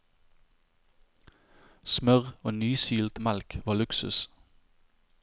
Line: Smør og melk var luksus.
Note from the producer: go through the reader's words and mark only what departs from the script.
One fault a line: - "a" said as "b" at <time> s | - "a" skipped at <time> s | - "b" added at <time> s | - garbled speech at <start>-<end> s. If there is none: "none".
- "nysilt" added at 2.5 s